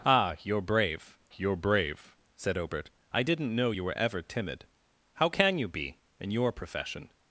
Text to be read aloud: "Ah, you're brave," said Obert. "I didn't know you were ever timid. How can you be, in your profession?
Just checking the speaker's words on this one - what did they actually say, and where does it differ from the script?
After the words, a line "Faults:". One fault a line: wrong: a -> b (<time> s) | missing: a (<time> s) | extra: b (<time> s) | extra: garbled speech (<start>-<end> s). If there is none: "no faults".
"Ah, you're brave you're brave," said Obert. "I didn't know you were ever timid. How can you be, in your profession?
Faults:
extra: you're brave (1.4 s)